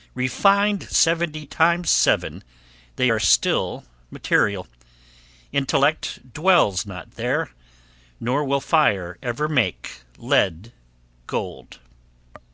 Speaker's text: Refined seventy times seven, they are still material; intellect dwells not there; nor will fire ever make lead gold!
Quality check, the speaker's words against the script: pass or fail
pass